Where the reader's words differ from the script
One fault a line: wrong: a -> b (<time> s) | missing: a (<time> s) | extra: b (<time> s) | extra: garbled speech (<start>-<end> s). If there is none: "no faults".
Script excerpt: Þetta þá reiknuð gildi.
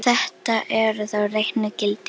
extra: eru (0.8 s)